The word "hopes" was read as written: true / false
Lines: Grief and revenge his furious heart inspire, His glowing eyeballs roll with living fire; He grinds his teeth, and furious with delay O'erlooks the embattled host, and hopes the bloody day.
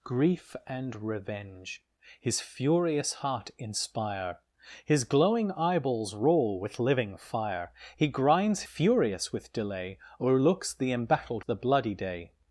false